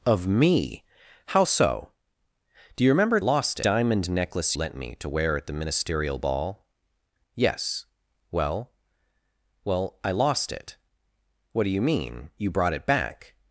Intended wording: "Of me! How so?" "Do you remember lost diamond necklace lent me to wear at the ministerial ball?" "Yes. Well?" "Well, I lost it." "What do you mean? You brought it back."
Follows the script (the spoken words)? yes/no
yes